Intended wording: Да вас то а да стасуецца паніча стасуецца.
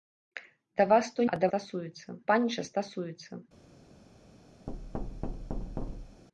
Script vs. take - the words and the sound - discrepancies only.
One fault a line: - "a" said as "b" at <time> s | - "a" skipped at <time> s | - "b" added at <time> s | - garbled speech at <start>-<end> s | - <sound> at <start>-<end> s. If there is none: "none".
- thud at 4.7-6.2 s